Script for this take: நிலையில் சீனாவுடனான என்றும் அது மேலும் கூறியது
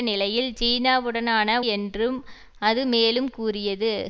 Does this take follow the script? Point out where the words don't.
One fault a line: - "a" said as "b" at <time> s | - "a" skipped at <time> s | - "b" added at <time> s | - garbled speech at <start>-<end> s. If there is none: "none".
none